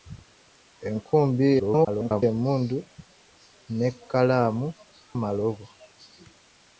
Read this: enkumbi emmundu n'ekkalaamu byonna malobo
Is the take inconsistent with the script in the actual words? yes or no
yes